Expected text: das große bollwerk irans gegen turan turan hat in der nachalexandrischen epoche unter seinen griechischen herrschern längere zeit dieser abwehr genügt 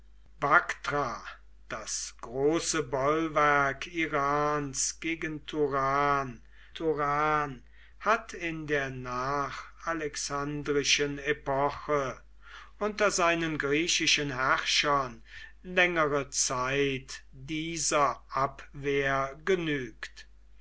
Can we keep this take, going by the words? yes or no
yes